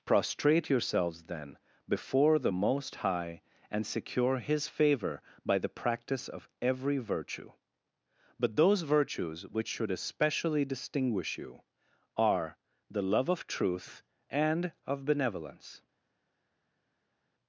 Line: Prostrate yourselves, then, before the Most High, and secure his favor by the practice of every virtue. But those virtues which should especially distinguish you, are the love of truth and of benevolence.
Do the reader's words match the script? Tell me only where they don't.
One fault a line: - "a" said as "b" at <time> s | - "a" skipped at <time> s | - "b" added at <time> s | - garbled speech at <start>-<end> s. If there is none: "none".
none